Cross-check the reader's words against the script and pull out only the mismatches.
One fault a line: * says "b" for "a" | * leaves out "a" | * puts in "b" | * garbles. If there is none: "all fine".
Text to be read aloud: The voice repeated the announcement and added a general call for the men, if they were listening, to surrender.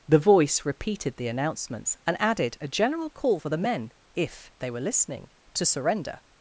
* says "announcements" for "announcement"